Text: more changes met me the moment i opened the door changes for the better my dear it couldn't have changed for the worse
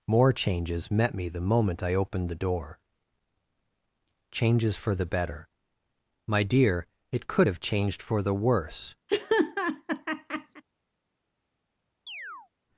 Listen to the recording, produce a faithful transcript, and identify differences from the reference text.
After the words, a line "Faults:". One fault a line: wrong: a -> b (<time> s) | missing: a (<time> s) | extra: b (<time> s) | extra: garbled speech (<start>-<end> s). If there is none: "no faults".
more changes met me the moment i opened the door changes for the better my dear it could have changed for the worse
Faults:
wrong: couldn't -> could (7.3 s)